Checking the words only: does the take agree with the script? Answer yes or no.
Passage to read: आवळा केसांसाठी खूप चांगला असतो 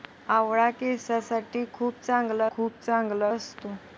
no